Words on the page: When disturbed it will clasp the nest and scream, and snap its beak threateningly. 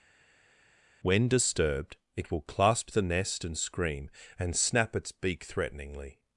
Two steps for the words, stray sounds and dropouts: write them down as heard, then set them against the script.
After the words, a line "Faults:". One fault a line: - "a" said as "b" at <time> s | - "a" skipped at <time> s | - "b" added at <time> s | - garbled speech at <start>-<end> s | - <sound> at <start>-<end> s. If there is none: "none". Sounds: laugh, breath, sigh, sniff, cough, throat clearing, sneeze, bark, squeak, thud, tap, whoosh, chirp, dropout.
When disturbed it will clasp the nest and scream, and snap its beak threateningly.
Faults:
none